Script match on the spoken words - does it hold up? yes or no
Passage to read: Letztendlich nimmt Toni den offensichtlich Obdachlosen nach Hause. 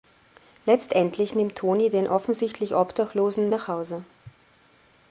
yes